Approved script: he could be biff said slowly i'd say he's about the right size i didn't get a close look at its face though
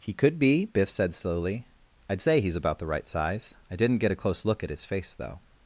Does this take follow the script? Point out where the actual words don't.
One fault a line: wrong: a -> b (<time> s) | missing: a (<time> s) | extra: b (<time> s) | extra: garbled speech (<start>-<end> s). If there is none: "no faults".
wrong: its -> his (4.7 s)